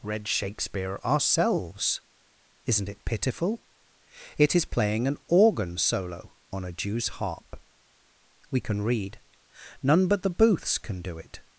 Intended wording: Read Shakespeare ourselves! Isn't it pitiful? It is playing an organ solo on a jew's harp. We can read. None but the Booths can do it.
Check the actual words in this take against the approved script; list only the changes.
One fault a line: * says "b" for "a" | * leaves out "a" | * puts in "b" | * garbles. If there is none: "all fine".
all fine